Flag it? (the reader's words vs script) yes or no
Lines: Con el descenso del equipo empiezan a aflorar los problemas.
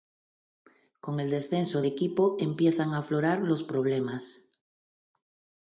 yes